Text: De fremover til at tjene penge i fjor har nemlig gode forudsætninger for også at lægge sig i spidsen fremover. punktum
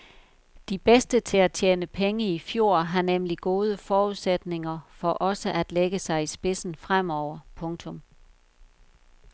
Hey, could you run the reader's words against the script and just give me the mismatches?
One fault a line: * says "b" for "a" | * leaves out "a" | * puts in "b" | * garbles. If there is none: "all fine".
* says "bedste" for "fremover"